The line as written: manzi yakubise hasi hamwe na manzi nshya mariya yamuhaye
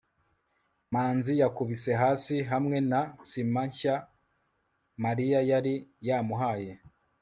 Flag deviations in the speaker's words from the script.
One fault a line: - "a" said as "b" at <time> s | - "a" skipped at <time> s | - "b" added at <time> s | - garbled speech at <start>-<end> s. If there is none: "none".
- "manzi" said as "sima" at 3.3 s
- "yari" added at 5.5 s